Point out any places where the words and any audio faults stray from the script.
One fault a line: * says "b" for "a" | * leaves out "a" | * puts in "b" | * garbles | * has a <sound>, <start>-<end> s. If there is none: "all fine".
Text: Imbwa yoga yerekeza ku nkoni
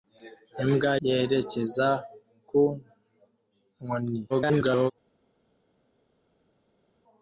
* leaves out "yoga"
* garbles